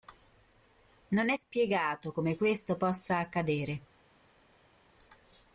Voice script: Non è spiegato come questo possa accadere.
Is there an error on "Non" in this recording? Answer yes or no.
no